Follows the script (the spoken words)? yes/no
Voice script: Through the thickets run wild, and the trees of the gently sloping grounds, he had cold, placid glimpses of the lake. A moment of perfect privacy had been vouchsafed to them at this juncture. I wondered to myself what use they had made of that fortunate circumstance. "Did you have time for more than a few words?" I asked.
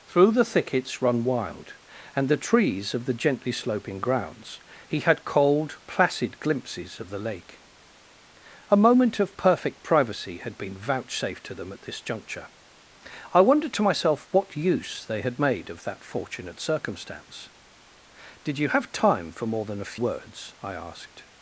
no